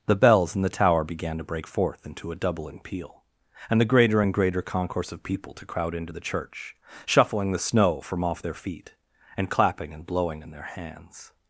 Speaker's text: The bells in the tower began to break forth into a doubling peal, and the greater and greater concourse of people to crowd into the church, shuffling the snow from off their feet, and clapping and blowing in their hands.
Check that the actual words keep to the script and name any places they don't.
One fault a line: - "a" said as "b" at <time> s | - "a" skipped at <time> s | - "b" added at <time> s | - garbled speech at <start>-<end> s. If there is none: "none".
none